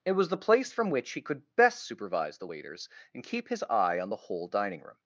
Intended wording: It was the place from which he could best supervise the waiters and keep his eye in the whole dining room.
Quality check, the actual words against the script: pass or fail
fail